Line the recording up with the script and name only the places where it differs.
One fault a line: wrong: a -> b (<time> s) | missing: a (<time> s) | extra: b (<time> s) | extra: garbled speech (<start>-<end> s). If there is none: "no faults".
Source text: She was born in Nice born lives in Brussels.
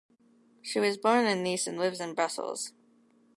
wrong: born -> and (1.7 s)